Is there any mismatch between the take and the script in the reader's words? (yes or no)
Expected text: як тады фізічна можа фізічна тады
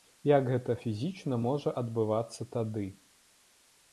yes